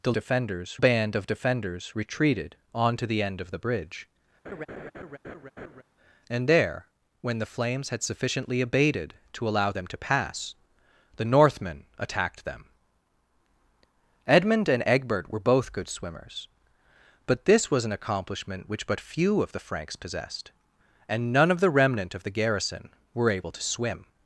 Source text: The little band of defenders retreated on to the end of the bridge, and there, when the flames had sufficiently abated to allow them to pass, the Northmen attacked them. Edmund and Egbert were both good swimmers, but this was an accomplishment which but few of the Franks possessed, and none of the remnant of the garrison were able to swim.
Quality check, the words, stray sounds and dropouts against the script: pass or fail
fail